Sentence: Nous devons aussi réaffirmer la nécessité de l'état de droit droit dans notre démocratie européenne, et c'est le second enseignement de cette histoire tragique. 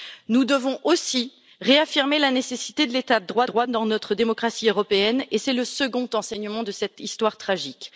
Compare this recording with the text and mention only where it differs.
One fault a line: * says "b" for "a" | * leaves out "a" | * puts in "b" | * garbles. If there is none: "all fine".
all fine